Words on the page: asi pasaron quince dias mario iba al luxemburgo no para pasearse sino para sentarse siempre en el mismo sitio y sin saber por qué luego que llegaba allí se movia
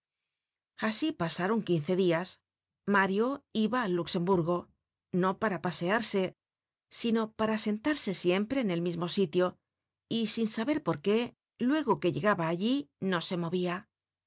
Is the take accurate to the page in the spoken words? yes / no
no